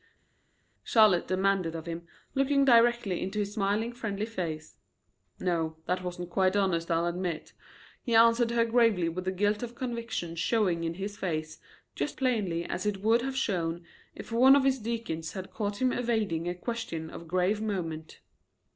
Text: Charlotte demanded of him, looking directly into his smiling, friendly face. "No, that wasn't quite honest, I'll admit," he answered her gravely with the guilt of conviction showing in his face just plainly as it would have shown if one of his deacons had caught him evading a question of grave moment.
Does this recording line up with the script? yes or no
yes